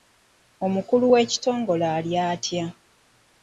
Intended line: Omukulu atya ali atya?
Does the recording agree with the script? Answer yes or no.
no